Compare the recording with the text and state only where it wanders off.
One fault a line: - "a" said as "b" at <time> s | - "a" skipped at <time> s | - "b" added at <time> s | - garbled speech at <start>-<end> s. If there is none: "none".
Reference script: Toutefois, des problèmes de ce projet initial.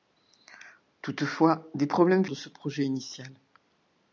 none